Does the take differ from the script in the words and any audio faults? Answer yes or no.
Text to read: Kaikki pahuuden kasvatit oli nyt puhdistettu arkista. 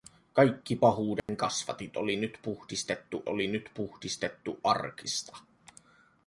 yes